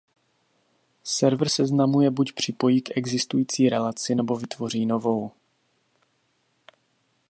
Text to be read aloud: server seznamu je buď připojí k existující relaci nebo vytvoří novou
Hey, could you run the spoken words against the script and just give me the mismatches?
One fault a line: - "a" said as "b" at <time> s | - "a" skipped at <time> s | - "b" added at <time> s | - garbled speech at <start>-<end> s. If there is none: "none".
none